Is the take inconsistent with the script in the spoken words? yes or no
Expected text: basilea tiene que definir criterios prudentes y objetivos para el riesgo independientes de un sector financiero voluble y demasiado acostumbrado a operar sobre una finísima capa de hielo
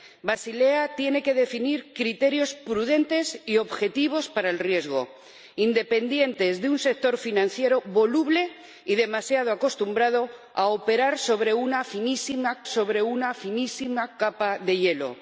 yes